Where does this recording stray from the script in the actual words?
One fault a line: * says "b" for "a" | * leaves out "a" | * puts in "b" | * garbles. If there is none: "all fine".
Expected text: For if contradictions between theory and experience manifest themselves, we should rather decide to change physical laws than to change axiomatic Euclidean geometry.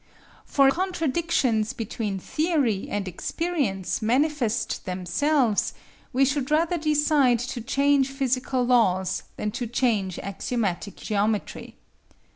* leaves out "if"
* leaves out "Euclidean"